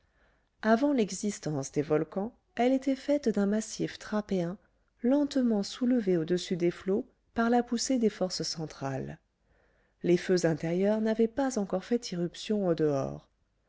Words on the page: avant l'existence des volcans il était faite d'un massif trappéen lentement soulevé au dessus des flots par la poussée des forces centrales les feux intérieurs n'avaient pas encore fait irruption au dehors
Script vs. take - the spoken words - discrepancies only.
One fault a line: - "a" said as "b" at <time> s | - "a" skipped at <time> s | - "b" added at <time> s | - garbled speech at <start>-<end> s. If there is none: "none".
- "il" said as "elle" at 2.5 s